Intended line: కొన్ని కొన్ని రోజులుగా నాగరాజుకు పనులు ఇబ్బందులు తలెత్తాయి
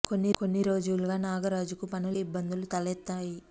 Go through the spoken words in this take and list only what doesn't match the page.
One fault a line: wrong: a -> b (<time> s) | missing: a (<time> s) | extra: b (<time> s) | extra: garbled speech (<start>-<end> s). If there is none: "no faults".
no faults